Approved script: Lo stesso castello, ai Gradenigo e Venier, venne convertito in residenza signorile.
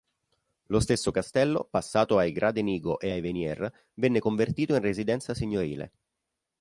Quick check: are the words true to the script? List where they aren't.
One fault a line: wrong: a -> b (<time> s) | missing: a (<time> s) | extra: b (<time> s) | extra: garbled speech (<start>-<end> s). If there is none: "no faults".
extra: passato (1.7 s)
extra: ai (3.1 s)